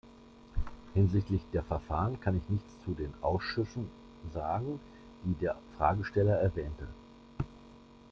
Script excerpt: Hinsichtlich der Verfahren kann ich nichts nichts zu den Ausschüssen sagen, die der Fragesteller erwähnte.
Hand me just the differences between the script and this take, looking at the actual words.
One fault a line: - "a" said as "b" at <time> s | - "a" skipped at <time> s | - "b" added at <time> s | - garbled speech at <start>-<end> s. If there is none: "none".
- "nichts" skipped at 2.8 s